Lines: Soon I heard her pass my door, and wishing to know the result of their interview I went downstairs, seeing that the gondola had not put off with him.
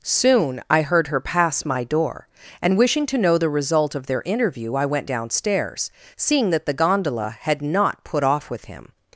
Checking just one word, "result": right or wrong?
right